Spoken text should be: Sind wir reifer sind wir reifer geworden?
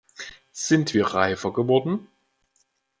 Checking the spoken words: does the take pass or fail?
fail